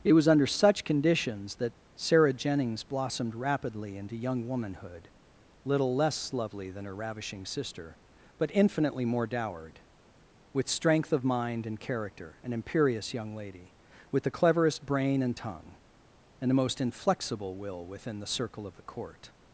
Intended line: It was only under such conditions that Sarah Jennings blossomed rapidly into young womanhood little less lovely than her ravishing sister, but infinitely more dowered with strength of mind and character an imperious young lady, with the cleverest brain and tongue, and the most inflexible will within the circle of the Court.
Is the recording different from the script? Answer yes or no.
yes